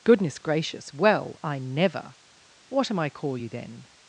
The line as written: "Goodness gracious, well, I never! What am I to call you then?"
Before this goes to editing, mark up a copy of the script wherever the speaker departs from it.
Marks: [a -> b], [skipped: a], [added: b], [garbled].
"Goodness gracious, well, I never! What am I [skipped: to] call you then?"